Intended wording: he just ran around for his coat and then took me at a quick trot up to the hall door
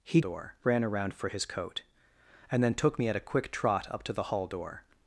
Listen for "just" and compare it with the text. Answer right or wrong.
wrong